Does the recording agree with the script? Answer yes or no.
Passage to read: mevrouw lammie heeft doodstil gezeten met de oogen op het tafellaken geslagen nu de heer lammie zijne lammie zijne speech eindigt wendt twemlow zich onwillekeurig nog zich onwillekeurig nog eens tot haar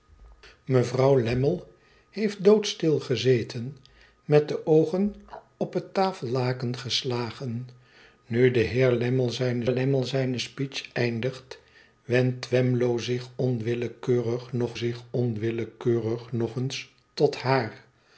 yes